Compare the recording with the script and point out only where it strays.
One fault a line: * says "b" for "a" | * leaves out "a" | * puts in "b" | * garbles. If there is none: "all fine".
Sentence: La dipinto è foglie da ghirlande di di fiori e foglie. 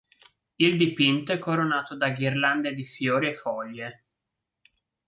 * says "Il" for "La"
* says "coronato" for "foglie"
* leaves out "di"